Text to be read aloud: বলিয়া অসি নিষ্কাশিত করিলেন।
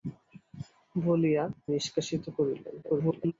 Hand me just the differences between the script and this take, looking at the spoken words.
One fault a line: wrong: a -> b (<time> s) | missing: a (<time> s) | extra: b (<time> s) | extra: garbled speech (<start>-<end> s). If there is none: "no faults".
missing: অসি (1.4 s)
extra: garbled speech (2.8-3.3 s)